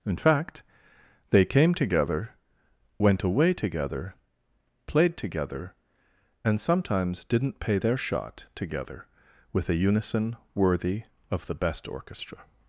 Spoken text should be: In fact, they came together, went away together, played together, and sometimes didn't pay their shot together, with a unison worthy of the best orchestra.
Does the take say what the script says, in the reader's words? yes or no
yes